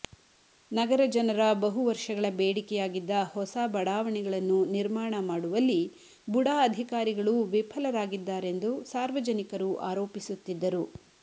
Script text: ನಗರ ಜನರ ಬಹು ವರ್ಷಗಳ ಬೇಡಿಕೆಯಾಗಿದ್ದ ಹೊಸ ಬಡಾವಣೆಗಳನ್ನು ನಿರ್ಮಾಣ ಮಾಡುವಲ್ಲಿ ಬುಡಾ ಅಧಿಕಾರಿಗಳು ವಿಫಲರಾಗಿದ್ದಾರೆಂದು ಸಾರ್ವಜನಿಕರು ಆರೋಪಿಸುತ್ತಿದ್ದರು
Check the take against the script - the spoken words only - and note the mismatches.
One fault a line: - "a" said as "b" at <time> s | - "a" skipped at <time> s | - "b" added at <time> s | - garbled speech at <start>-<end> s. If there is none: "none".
none